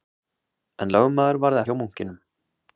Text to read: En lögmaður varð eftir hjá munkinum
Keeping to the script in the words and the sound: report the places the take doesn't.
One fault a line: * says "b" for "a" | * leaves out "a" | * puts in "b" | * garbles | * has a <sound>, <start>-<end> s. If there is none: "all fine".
* leaves out "eftir"